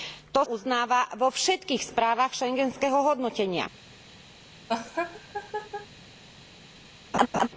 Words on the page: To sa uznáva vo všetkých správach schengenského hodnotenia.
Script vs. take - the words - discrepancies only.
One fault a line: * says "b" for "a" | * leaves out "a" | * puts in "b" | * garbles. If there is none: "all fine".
* leaves out "sa"